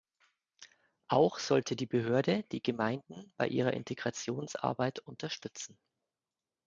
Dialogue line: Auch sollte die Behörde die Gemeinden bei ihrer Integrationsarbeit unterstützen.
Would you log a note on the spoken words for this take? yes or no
no